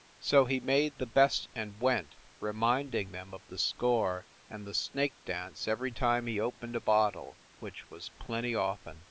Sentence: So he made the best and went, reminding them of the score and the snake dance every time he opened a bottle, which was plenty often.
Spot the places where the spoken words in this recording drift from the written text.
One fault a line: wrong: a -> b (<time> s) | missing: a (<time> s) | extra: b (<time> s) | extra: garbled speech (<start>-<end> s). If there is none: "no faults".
no faults